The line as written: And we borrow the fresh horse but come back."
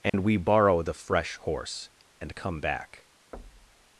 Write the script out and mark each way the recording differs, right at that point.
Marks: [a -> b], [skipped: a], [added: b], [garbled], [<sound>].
And [dropout] we borrow the fresh horse [but -> and] come back." [thud]